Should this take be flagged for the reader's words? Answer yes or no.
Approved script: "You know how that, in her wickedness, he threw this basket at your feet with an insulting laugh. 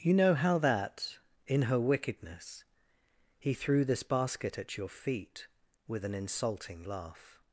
no